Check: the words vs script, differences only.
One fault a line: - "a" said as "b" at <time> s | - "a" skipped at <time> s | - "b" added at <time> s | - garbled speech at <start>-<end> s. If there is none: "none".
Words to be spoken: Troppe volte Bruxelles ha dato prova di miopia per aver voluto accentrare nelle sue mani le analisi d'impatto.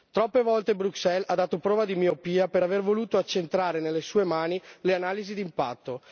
none